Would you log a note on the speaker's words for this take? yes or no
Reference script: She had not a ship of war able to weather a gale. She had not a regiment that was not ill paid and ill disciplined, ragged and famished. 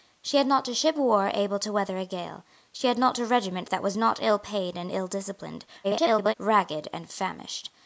yes